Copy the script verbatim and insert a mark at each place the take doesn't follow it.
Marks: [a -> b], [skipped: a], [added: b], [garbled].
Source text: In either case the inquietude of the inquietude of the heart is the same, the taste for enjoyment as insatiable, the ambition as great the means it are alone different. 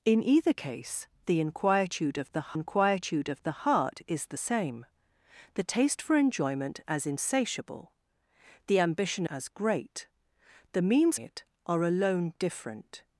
In either case the inquietude of the inquietude of the heart is the same, the taste for enjoyment as insatiable, the ambition as great the means it are alone different.